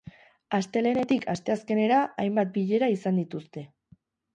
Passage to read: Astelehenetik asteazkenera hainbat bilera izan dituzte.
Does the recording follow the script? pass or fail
pass